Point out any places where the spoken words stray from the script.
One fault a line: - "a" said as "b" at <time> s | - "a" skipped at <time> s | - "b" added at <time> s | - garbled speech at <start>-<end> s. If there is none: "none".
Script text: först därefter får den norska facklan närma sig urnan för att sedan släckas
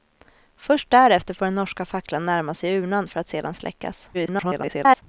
- garbled speech at 4.1-5.0 s